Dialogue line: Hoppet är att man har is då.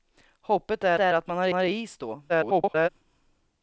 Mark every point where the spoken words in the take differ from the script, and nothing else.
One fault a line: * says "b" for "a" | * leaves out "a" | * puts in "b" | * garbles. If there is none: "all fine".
* puts in "är"
* puts in "har"
* garbles